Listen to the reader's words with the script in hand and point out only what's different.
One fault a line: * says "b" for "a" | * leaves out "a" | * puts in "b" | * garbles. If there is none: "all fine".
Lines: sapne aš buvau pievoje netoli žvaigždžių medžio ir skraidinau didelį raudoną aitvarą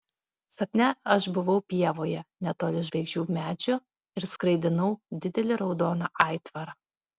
all fine